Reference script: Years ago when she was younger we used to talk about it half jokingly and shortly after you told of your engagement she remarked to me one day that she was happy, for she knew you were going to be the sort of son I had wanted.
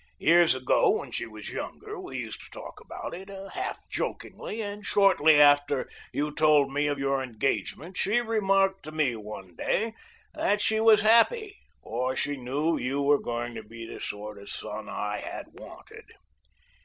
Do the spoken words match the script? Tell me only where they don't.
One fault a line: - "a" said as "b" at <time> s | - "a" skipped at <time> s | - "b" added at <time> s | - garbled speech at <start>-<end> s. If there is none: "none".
- "me" added at 6.7 s